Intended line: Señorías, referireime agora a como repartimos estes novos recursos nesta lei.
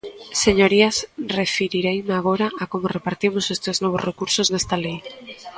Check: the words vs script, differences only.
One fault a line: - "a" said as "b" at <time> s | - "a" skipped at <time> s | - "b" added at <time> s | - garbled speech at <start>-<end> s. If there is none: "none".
none